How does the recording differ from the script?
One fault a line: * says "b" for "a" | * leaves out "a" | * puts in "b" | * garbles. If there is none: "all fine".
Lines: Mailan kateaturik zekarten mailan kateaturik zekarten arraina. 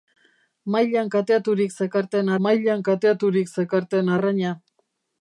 all fine